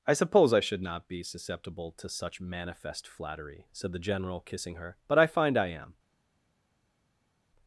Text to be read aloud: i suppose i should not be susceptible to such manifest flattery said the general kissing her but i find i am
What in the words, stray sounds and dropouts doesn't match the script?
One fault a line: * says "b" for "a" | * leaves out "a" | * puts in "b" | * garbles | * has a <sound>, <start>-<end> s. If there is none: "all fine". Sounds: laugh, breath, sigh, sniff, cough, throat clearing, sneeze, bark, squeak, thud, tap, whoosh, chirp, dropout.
all fine